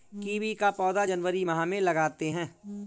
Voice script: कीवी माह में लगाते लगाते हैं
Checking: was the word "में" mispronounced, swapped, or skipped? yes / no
no